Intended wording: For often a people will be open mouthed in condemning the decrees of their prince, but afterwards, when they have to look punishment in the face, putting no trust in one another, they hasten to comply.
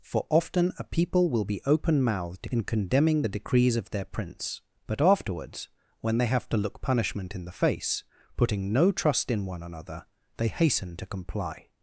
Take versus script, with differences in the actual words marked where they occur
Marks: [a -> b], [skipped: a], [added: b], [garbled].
For often a people will be open mouthed in condemning the decrees of their prince, but afterwards, when they have to look punishment in the face, putting no trust in one another, they hasten to comply.